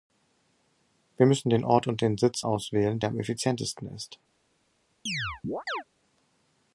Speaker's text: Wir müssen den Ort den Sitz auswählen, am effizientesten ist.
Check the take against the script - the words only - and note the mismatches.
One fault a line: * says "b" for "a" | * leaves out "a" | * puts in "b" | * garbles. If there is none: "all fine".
* puts in "und"
* puts in "der"